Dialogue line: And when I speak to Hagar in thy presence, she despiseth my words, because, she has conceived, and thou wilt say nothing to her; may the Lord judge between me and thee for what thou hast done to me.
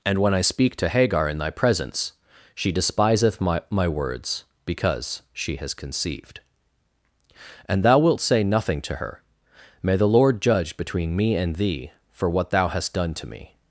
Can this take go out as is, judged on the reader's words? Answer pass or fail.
fail